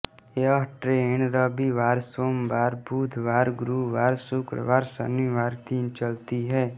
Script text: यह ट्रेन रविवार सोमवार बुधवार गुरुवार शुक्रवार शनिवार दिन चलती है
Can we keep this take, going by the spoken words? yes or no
yes